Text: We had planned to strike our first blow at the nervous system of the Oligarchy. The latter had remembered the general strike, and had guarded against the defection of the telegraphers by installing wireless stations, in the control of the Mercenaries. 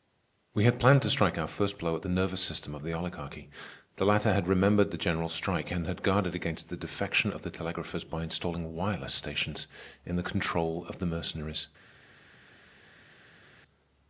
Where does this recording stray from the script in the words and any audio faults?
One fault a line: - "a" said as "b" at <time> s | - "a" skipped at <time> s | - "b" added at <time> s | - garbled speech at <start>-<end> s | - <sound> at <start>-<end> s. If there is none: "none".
none